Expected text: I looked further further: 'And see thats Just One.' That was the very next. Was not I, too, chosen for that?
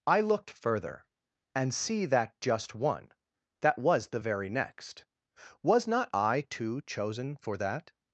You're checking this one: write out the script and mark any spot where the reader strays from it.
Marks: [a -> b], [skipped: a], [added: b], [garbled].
I looked further [skipped: further:] 'And see [thats -> that] Just One.' That was the very next. Was not I, too, chosen for that?